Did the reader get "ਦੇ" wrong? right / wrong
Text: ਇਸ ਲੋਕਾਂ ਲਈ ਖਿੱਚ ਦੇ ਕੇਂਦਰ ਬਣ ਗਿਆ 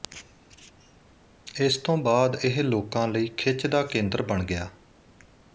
wrong